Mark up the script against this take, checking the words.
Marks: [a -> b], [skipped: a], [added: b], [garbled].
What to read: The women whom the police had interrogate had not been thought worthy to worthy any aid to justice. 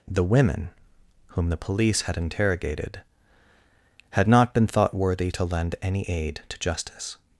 The women whom the police had [interrogate -> interrogated] had not been thought worthy to [worthy -> lend] any aid to justice.